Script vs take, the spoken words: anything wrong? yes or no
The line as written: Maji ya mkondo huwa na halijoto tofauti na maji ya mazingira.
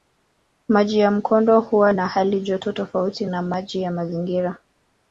no